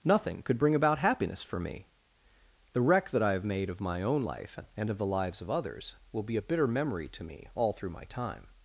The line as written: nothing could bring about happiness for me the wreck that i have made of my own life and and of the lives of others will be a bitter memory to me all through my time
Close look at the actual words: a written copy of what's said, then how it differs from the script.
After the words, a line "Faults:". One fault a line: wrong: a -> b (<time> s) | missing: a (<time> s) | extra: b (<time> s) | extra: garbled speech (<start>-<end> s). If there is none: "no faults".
nothing could bring about happiness for me the wreck that i have made of my own life and of the lives of others will be a bitter memory to me all through my time
Faults:
missing: and (4.9 s)